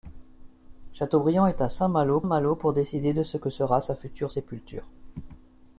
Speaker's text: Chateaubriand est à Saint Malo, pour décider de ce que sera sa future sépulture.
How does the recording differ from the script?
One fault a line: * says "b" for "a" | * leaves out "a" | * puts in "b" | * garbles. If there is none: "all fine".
* puts in "Malo"